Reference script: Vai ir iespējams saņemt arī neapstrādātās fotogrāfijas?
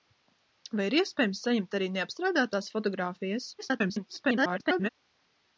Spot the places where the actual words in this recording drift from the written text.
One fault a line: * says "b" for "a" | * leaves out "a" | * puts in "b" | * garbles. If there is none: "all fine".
* garbles